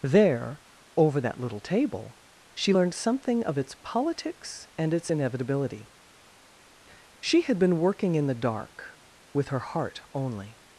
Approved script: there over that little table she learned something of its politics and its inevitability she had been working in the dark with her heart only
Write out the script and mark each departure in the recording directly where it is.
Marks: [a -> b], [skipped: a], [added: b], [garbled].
there over that little table she learned something of its politics and its inevitability she had been working in the dark with her heart only